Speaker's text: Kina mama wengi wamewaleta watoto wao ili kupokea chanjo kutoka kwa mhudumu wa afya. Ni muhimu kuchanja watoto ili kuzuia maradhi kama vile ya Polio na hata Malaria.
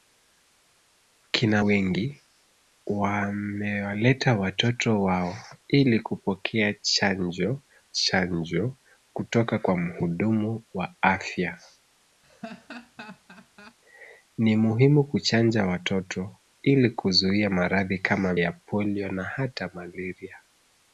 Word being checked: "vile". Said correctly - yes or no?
no